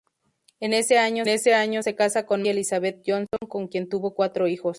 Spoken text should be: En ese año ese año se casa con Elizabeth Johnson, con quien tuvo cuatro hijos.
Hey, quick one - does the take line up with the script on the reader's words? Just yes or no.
yes